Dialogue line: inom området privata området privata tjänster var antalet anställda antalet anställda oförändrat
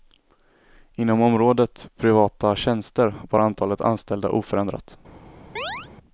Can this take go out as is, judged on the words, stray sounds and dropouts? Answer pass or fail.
fail